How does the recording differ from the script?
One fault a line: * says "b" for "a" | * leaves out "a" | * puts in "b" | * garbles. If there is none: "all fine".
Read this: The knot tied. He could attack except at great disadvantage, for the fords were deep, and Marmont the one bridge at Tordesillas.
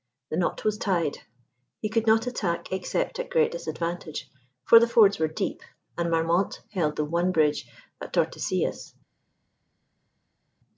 * puts in "was"
* puts in "not"
* puts in "held"